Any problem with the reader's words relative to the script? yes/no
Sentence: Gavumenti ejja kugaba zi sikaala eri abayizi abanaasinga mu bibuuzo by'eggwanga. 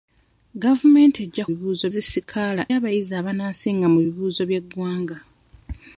yes